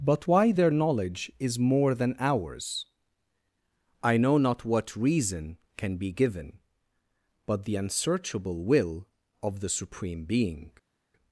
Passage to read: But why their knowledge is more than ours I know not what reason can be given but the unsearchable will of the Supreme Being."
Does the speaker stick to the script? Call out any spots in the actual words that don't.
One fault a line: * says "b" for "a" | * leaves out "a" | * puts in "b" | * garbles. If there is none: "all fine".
all fine